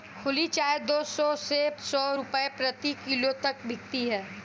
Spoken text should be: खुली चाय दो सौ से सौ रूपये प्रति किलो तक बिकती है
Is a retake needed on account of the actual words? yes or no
no